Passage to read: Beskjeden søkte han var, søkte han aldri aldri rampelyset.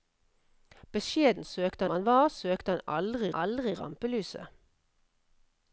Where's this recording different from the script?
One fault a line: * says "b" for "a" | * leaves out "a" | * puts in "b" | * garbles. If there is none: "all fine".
all fine